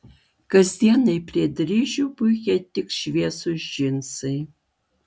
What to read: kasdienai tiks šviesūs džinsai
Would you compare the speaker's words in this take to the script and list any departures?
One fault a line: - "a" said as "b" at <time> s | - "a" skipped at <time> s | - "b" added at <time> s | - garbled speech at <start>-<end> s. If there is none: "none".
- "prie dryžių puikiai" added at 1.3 s